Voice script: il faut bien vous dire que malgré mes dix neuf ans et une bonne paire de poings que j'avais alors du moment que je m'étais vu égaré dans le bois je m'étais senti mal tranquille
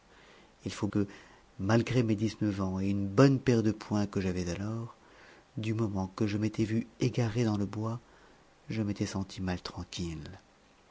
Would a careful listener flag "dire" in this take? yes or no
yes